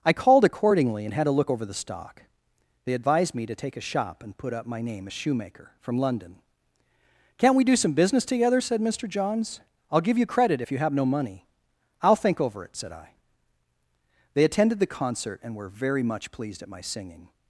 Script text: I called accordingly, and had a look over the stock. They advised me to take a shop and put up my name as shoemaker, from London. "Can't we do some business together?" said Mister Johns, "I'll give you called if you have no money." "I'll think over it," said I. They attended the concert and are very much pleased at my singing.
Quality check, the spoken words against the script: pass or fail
fail